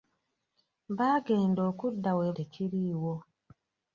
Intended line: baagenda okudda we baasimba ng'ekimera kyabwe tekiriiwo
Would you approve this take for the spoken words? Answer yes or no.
no